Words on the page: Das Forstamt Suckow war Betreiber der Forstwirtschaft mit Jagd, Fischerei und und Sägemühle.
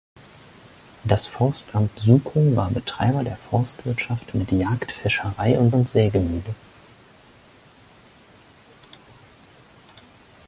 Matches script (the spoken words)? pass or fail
pass